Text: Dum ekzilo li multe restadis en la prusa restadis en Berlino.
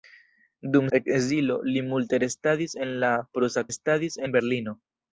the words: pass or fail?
pass